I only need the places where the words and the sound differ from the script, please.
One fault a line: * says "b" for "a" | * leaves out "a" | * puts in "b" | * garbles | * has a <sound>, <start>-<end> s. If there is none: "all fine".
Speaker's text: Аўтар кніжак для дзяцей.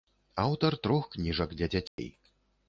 * puts in "трох"
* has a dropout, 1.9-2.0 s